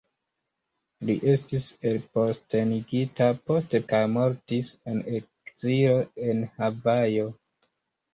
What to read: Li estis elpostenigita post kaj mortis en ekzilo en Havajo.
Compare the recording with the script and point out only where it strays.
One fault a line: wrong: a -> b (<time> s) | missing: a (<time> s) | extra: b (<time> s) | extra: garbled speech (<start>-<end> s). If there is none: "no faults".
no faults